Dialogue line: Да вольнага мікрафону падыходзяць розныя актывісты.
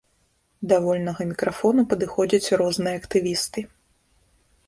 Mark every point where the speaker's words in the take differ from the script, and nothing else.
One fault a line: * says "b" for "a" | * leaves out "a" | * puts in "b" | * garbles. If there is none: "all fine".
all fine